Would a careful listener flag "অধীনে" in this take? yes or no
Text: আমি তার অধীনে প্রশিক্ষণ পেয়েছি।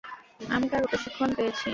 yes